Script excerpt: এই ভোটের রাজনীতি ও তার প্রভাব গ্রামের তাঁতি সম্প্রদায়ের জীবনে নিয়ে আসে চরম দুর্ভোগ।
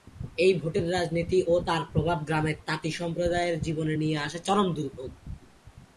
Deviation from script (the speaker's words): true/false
false